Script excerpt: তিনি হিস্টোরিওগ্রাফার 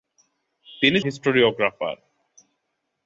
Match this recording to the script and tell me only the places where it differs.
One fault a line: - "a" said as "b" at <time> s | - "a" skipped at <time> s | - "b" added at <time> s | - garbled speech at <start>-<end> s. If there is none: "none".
none